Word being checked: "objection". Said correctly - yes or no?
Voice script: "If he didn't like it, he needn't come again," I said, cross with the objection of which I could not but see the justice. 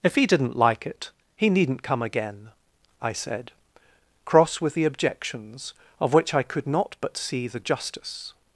no